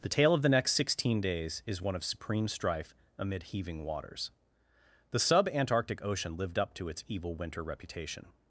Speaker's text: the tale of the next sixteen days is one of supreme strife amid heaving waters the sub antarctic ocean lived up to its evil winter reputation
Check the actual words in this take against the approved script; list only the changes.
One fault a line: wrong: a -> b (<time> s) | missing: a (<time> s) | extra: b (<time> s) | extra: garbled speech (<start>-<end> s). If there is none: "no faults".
no faults